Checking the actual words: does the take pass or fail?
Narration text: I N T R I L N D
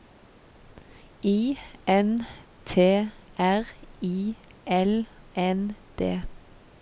pass